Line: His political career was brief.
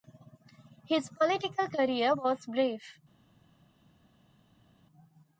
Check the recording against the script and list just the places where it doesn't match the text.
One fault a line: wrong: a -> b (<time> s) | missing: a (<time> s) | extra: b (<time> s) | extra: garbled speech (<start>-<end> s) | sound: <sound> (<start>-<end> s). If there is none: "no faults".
no faults